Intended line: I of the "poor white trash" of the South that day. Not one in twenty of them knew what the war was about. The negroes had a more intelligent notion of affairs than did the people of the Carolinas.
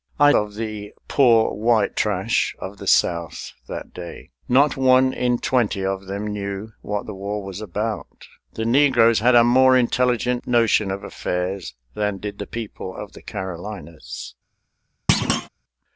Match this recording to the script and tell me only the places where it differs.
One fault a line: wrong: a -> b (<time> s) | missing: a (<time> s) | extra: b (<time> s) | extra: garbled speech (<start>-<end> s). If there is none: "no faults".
no faults